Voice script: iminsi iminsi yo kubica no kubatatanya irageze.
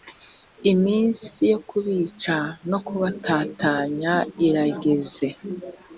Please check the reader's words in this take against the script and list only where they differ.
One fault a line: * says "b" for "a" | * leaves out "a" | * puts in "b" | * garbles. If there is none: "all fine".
* leaves out "iminsi"